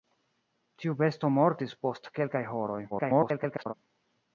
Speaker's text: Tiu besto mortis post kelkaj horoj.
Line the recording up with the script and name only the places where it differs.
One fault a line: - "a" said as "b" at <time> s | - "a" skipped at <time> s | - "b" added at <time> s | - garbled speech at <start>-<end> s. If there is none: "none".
- garbled speech at 2.9-3.7 s